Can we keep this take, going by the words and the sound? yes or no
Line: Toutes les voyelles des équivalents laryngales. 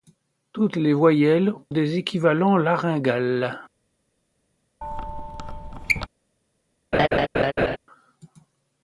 no